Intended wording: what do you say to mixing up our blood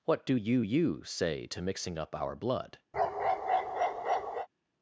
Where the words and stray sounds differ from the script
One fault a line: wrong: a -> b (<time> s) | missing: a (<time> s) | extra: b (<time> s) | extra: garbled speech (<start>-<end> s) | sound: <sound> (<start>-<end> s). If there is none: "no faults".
extra: you (0.6 s)
sound: bark (2.9-4.5 s)